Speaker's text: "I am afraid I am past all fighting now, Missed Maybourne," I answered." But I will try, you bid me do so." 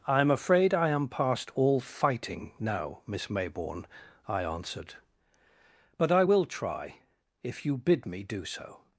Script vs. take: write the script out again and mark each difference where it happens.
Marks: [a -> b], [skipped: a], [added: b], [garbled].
"I am afraid I am past all fighting now, [Missed -> Miss] Maybourne," I answered." But I will try, [added: if] you bid me do so."